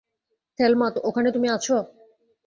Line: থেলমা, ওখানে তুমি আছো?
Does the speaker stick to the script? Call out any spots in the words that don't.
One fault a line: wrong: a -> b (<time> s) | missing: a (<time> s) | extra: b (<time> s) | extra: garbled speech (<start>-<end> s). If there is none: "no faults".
no faults